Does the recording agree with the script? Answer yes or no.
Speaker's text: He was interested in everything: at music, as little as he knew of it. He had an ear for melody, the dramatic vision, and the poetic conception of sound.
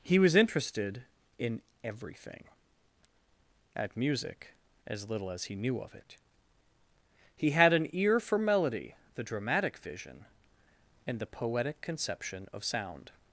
yes